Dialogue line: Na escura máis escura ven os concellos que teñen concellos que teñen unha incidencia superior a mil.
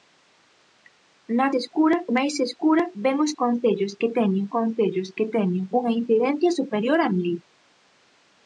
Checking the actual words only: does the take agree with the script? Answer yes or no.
yes